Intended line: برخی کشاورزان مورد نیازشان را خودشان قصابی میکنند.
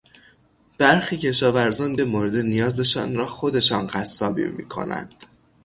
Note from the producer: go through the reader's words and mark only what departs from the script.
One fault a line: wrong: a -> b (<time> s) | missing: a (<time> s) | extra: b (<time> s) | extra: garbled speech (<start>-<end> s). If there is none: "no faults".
no faults